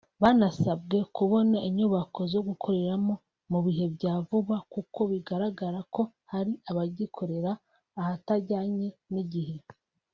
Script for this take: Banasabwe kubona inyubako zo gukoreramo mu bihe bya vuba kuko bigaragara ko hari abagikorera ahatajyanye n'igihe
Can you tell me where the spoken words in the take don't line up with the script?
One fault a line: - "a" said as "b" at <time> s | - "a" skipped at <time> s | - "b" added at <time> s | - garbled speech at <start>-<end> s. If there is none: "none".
none